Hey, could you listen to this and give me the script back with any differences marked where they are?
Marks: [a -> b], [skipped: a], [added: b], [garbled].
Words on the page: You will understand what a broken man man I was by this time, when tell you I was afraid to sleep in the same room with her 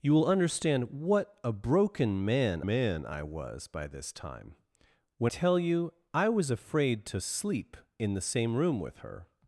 You will understand what a broken man man I was by this time, when tell you I was afraid to sleep in the same room with her